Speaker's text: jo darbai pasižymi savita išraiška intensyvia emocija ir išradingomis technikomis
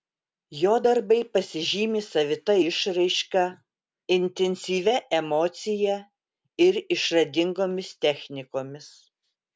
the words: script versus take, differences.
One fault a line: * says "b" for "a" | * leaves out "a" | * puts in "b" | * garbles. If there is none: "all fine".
all fine